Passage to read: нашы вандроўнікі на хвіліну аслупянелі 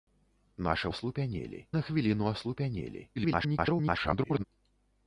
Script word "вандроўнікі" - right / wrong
wrong